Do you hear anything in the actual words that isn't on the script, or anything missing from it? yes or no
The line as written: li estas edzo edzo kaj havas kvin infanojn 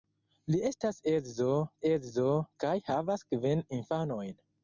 no